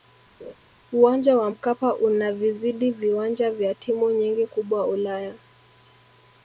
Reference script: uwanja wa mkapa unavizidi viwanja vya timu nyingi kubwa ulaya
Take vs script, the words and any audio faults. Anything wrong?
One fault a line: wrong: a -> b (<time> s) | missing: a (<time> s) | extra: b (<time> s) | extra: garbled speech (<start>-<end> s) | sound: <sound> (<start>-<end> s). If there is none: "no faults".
sound: laugh (0.4-0.5 s)